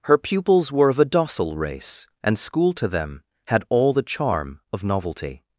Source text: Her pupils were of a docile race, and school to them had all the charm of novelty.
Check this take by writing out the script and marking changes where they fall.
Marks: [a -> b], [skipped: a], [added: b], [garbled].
Her pupils were of a docile race, and school to them had all the charm of novelty.